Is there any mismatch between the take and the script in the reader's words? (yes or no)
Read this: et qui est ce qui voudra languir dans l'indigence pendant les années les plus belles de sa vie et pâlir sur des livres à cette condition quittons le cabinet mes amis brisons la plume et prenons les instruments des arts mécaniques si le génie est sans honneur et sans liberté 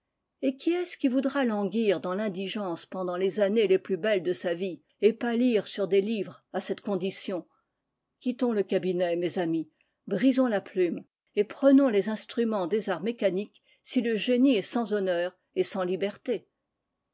no